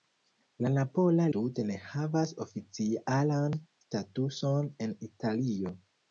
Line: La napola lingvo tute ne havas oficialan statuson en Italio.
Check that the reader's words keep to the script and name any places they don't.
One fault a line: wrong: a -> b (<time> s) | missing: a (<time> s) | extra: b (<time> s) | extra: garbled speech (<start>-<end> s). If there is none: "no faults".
missing: lingvo (1.2 s)